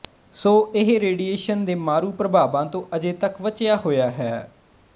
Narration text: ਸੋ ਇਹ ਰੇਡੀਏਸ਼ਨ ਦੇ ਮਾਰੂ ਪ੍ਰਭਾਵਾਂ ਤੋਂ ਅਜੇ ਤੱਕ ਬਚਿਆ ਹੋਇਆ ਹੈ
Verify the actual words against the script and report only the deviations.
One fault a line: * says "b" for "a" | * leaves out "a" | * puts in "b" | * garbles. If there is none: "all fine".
all fine